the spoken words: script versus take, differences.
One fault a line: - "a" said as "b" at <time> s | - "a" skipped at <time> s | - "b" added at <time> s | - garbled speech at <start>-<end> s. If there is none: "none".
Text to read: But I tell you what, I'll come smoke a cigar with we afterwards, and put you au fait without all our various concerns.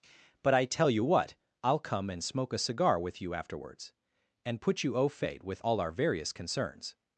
- "and" added at 2.1 s
- "we" said as "you" at 3.2 s
- "without" said as "with" at 5.4 s